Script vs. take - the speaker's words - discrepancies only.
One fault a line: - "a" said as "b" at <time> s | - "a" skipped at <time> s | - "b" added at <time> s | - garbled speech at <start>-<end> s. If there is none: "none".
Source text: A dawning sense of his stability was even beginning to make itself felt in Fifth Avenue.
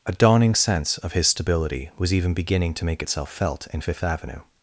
none